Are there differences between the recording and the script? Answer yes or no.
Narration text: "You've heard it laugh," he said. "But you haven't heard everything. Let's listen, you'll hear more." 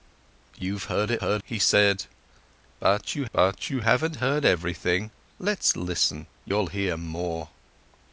yes